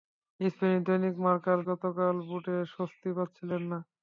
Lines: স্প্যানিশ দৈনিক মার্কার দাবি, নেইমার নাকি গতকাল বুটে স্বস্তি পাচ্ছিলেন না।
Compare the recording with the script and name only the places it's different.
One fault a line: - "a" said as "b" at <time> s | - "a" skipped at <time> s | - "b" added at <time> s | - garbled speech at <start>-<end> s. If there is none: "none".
- "দাবি নেইমার নাকি" skipped at 1.6 s